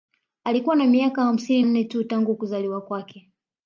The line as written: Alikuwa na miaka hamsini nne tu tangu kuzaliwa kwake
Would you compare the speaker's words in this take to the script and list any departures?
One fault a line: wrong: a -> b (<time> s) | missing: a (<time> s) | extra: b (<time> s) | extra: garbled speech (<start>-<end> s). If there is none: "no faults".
no faults